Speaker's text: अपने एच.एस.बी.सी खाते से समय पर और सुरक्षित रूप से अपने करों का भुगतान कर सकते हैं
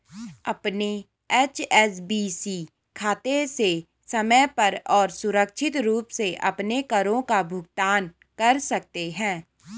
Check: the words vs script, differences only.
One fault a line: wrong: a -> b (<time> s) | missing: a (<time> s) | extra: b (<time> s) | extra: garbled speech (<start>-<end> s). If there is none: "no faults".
no faults